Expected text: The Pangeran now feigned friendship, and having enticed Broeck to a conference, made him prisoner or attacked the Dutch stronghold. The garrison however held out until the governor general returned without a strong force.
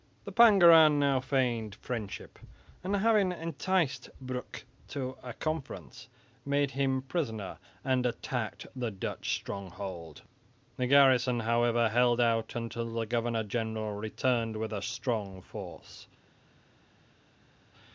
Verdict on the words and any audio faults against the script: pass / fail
fail